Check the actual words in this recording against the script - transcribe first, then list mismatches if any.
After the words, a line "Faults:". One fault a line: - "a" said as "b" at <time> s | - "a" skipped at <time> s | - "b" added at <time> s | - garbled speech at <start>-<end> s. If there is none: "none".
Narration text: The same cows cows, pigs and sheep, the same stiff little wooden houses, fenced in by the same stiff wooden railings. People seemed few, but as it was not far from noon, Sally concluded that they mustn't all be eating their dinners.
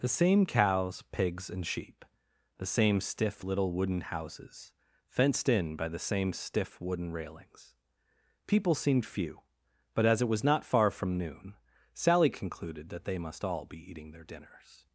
The same cows, pigs and sheep, the same stiff little wooden houses, fenced in by the same stiff wooden railings. People seemed few, but as it was not far from noon, Sally concluded that they must all be eating their dinners.
Faults:
- "cows" skipped at 1.0 s
- "mustn't" said as "must" at 13.2 s